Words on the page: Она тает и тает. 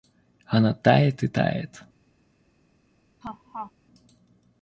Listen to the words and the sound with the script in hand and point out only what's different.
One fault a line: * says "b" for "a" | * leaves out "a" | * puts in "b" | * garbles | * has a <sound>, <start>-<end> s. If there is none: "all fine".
* has a laugh, 3.2-3.7 s